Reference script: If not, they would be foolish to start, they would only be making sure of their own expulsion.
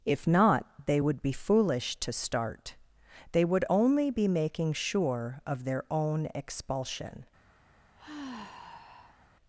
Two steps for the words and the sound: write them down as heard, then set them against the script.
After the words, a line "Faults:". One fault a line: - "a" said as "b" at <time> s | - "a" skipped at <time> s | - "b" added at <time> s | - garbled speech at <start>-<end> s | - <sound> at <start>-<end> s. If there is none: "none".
If not, they would be foolish to start, they would only be making sure of their own expulsion.
Faults:
- sigh at 7.9-9.3 s